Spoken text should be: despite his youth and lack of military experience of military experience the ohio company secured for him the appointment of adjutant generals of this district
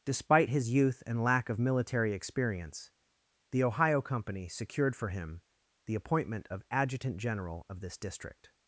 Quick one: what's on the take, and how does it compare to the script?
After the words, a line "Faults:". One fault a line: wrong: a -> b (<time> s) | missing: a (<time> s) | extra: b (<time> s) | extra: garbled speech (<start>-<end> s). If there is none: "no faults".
despite his youth and lack of military experience the ohio company secured for him the appointment of adjutant general of this district
Faults:
missing: of military experience (2.9 s)
wrong: generals -> general (7.2 s)